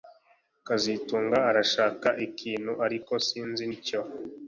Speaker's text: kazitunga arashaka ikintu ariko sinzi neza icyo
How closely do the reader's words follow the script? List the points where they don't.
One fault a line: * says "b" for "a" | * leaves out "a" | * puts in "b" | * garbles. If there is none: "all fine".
* leaves out "neza"